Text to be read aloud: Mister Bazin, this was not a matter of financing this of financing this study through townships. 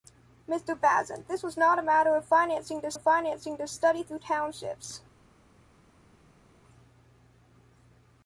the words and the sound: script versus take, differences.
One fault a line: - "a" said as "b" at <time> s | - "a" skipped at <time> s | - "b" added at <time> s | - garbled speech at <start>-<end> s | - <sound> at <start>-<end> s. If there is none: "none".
none